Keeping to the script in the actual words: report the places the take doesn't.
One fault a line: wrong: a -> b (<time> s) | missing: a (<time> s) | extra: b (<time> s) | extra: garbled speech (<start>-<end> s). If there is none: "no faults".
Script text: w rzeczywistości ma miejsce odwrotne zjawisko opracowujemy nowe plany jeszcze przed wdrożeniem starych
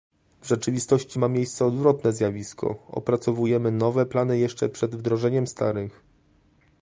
no faults